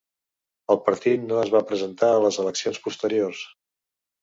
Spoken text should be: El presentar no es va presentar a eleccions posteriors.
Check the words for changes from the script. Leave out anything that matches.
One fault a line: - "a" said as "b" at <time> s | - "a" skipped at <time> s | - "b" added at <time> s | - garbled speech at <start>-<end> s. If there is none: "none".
- "presentar" said as "partit" at 0.9 s
- "les" added at 2.3 s